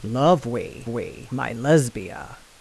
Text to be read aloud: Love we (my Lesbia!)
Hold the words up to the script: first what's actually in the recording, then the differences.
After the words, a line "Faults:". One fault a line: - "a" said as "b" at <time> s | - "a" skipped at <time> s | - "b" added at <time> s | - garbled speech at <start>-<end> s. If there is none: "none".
Love we we (my Lesbia!)
Faults:
- "we" added at 0.9 s